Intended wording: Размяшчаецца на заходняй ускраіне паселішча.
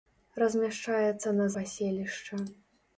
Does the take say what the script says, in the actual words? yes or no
no